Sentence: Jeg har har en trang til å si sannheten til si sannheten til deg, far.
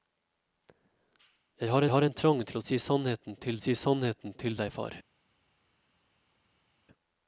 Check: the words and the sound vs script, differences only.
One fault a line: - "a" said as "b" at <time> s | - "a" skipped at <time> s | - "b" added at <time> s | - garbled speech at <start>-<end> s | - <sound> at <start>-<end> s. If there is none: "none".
none